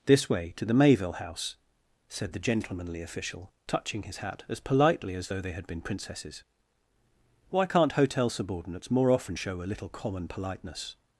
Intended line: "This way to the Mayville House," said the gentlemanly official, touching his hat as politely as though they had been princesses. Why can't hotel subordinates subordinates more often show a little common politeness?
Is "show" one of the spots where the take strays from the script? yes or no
no